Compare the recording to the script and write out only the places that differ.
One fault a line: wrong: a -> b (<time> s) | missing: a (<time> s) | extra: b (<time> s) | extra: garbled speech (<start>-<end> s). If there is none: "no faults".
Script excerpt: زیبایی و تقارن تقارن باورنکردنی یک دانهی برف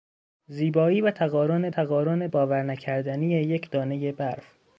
no faults